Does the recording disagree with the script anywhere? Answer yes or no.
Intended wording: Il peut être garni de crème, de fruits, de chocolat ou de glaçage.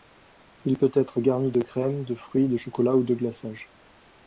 no